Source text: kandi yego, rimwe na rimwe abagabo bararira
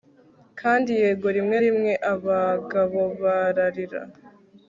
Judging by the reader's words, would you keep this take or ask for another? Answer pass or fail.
fail